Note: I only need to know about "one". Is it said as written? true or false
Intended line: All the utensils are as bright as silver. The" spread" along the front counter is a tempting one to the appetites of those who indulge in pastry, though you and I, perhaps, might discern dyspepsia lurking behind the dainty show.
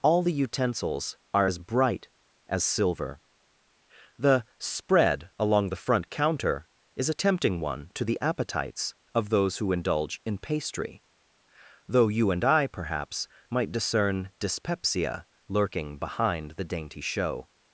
true